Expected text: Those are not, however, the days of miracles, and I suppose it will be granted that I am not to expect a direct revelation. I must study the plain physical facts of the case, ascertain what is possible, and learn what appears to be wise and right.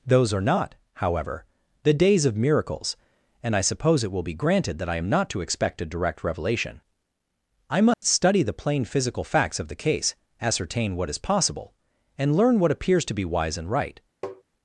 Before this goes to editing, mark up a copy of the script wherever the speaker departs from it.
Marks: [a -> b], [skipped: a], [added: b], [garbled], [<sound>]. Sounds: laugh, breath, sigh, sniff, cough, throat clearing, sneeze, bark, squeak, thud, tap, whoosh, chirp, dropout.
Those are not, however, the days of miracles, and I suppose it will be granted that I am not to expect a direct revelation. I must [dropout] study the plain physical facts of the case, ascertain what is possible, and learn what appears to be wise and right. [tap]